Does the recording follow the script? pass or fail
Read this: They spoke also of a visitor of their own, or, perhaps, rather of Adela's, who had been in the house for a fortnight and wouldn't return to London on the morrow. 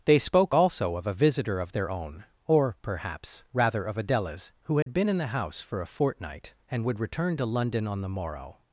fail